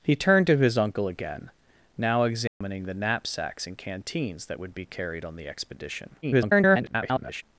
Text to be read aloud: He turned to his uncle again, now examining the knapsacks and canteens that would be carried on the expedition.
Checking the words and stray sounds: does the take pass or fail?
fail